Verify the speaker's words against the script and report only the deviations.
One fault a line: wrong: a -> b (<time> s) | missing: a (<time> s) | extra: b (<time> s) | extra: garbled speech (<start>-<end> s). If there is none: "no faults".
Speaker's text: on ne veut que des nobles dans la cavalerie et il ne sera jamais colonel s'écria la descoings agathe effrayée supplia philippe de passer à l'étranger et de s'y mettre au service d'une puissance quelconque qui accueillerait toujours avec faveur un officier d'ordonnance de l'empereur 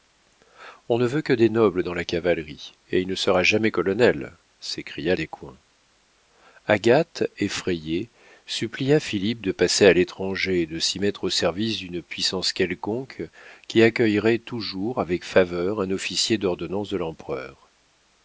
missing: la (5.2 s)